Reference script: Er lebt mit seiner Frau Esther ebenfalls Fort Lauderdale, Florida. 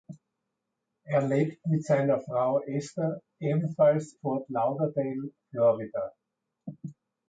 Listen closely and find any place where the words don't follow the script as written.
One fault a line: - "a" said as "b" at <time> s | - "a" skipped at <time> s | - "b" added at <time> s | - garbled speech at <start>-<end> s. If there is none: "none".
none